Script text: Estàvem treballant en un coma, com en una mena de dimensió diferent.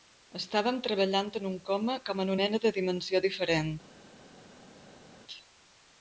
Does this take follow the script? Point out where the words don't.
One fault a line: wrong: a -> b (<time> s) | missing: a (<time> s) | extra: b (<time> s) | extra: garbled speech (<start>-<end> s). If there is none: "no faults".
missing: una (2.3 s)